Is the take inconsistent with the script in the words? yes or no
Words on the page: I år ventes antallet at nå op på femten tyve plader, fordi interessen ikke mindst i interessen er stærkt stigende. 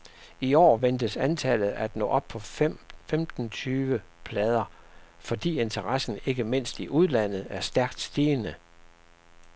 yes